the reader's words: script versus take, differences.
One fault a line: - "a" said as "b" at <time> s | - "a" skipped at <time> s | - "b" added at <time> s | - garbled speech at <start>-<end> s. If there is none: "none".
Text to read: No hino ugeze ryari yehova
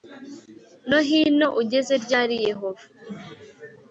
none